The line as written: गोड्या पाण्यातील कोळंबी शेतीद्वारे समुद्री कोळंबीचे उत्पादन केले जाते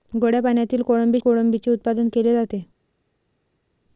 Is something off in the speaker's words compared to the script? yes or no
yes